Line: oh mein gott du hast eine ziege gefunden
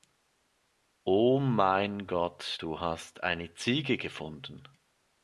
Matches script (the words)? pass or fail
pass